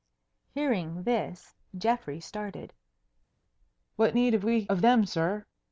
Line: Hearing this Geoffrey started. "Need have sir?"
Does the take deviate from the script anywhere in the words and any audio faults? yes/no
yes